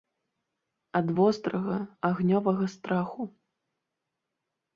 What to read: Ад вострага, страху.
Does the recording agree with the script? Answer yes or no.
no